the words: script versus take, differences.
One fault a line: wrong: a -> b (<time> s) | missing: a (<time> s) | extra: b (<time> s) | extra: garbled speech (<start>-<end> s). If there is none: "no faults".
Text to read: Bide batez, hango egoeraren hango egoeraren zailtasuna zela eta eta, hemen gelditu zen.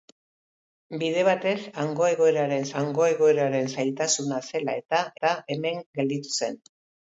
no faults